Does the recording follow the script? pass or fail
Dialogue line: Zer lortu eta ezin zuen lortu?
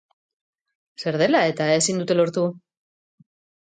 fail